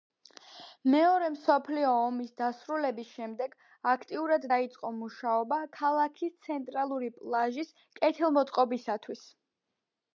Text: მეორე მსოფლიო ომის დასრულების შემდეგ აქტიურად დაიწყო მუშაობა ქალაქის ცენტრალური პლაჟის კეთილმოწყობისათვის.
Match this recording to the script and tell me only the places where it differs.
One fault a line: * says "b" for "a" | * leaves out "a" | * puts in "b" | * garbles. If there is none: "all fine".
all fine